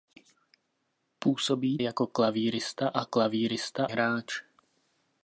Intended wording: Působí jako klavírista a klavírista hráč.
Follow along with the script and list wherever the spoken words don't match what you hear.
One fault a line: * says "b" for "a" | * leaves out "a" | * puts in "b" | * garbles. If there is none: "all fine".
all fine